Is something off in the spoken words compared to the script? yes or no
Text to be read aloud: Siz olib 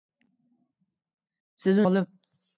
no